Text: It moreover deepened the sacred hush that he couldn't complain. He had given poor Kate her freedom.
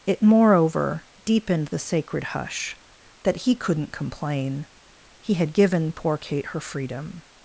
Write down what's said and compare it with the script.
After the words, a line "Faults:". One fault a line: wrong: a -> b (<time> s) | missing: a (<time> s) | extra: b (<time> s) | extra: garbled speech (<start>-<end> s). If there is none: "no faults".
It moreover deepened the sacred hush that he couldn't complain. He had given poor Kate her freedom.
Faults:
no faults